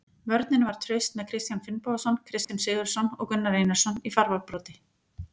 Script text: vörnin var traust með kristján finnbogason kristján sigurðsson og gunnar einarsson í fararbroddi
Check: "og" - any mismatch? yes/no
no